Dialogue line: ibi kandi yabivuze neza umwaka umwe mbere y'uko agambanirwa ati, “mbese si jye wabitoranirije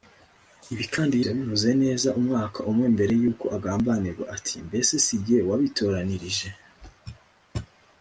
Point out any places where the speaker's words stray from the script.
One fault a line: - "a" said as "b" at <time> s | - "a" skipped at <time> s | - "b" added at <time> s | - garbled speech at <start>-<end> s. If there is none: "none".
none